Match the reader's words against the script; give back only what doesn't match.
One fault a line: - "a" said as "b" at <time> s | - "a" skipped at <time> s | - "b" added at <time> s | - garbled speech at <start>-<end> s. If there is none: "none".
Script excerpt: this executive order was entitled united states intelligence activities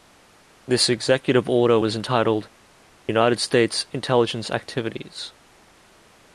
none